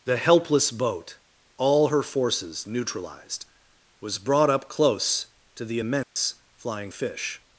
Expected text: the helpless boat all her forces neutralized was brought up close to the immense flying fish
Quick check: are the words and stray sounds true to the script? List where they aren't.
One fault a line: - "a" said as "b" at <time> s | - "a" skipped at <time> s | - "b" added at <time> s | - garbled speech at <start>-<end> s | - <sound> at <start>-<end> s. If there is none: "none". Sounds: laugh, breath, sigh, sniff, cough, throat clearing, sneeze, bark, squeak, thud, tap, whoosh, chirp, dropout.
- dropout at 6.0-6.2 s